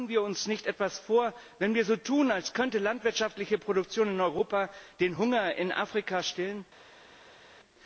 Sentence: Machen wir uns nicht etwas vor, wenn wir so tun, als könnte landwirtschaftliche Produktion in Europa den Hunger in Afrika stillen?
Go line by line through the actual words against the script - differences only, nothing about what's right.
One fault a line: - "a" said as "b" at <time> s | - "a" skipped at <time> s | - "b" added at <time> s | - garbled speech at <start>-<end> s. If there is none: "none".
none